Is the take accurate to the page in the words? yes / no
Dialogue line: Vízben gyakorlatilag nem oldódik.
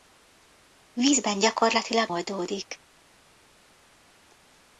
no